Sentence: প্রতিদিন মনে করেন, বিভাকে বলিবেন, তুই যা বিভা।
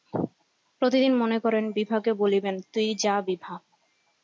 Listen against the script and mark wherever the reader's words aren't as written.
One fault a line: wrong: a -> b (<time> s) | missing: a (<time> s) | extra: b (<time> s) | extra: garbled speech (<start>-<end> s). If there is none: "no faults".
no faults